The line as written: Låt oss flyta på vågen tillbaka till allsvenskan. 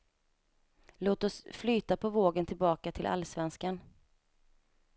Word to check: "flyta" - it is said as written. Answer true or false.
true